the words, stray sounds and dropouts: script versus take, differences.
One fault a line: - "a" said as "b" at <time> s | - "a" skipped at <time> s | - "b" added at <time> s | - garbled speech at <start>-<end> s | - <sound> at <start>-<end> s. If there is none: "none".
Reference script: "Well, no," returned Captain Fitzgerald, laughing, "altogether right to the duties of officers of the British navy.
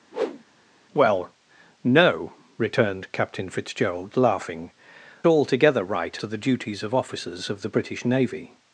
- whoosh at 0.1-0.4 s